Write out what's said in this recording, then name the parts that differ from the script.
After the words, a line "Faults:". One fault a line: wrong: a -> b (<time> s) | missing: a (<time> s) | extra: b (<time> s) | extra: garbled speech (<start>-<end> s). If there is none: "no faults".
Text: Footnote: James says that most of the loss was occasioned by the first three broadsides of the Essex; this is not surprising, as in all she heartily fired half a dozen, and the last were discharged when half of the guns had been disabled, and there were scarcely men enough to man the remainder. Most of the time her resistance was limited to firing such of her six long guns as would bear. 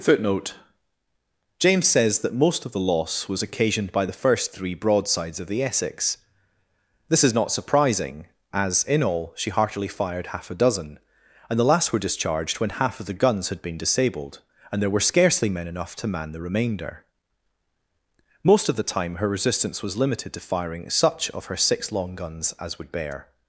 Footnote: James says that most of the loss was occasioned by the first three broadsides of the Essex; this is not surprising, as in all she heartily fired half a dozen, and the last were discharged when half of the guns had been disabled, and there were scarcely men enough to man the remainder. Most of the time her resistance was limited to firing such of her six long guns as would bear.
Faults:
no faults